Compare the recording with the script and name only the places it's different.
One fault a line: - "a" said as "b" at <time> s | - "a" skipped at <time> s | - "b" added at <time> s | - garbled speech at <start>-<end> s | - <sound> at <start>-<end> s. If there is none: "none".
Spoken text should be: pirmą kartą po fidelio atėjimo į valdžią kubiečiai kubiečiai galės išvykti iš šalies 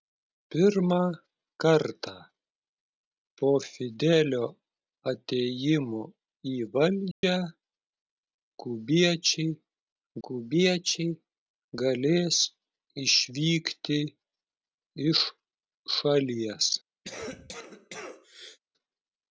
- dropout at 7.1-7.2 s
- cough at 17.0-18.6 s